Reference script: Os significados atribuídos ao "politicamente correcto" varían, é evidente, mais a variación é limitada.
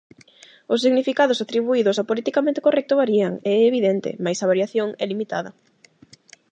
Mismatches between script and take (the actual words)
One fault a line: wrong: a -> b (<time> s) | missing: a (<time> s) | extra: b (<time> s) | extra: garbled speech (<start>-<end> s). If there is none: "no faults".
no faults